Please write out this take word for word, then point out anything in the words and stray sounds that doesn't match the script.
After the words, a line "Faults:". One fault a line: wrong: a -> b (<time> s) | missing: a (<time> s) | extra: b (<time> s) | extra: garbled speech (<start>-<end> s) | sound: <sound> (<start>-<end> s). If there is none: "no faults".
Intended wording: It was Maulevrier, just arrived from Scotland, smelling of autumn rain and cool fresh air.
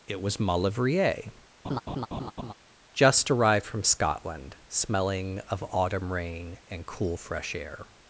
It was Maulevrier, just arrived from Scotland, smelling of autumn rain and cool fresh air.
Faults:
sound: laugh (1.6-2.5 s)